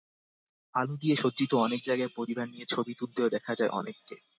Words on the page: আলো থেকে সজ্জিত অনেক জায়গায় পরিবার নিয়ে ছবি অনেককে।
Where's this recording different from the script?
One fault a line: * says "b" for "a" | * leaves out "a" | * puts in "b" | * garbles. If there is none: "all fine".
* says "দিয়ে" for "থেকে"
* puts in "তুলতেও দেখা যায়"